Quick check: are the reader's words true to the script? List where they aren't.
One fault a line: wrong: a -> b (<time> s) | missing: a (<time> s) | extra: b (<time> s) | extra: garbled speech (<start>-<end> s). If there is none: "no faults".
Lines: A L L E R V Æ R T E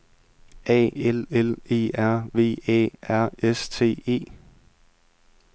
extra: S (3.4 s)